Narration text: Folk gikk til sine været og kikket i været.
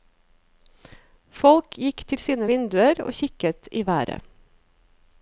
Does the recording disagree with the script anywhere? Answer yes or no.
yes